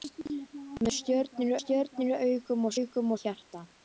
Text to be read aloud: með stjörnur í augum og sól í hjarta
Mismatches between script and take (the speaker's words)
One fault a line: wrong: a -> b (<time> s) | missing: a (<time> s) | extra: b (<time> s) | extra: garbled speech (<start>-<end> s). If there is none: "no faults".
extra: stjörnur (1.6 s)
wrong: sól -> augum (2.8 s)